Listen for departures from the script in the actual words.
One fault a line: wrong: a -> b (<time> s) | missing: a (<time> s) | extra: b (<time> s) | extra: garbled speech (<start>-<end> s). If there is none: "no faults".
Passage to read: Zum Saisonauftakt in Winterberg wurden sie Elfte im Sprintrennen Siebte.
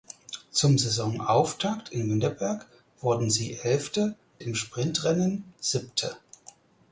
no faults